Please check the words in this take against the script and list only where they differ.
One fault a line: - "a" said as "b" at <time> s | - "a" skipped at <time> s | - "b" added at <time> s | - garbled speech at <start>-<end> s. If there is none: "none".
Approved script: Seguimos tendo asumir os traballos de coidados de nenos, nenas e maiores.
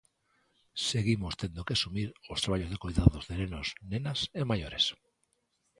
- "que" added at 1.6 s